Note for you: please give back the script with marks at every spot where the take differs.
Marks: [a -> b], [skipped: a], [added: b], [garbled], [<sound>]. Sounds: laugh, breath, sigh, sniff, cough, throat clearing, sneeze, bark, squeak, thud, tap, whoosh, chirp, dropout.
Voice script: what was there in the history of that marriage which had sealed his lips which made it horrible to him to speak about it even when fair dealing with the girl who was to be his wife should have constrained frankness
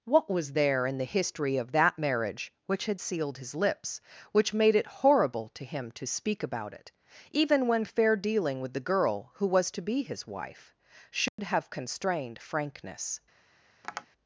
what was there in the history of that marriage which had sealed his lips which made it horrible to him to speak about it even when fair dealing with the girl who was to be his wife should [dropout] have constrained frankness [tap]